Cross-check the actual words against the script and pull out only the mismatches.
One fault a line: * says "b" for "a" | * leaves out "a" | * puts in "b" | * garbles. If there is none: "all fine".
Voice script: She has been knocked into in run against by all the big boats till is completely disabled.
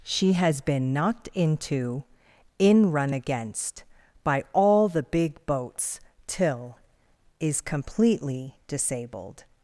all fine